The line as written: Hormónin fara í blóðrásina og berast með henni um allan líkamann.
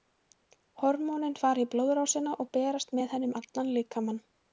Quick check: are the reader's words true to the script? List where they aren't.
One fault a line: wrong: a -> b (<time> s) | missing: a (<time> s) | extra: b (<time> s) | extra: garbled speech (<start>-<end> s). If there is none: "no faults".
no faults